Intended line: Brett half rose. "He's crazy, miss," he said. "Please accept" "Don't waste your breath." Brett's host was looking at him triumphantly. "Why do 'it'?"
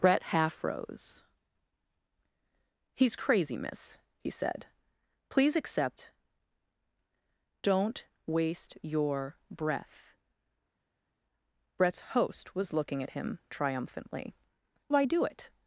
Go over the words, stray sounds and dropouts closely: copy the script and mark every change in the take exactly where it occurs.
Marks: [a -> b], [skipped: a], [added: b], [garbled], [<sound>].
Brett half rose. "He's crazy, miss," he said. "Please accept" "Don't waste your breath." Brett's host was looking at him triumphantly. "Why do 'it'?"